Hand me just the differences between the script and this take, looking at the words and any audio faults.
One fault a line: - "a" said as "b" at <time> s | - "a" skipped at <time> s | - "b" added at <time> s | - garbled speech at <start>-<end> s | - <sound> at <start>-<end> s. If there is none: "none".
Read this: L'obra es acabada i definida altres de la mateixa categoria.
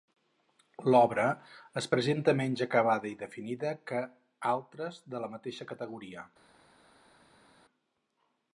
- "presenta menys" added at 1.9 s
- "que" added at 3.9 s